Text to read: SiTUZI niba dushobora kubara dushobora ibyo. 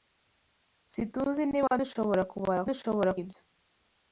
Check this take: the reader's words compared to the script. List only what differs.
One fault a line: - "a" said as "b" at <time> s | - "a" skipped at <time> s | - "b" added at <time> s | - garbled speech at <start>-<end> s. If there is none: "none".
none